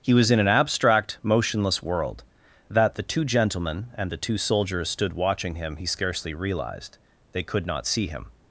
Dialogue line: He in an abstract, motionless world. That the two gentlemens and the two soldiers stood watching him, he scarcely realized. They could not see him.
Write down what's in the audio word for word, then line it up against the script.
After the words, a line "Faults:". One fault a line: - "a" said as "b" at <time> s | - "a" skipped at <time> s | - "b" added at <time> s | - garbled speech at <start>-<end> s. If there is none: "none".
He was in an abstract, motionless world. That the two gentlemen and the two soldiers stood watching him, he scarcely realized. They could not see him.
Faults:
- "was" added at 0.1 s
- "gentlemens" said as "gentlemen" at 3.2 s